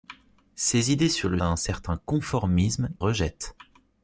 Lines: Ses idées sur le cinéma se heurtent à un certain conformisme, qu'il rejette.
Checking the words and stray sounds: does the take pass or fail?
fail